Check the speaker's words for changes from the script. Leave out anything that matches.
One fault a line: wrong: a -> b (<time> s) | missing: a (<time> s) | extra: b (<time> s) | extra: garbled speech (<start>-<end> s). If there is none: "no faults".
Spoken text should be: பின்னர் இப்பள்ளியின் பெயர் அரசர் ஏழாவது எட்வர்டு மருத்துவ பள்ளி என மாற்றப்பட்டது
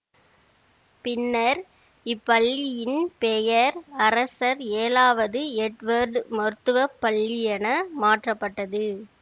no faults